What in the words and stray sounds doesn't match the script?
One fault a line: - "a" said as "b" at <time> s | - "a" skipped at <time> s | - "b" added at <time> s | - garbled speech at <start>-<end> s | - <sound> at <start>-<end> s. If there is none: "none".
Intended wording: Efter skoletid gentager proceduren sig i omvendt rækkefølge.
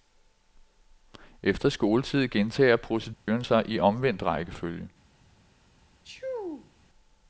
- dropout at 3.1-3.3 s
- sneeze at 6.0-6.7 s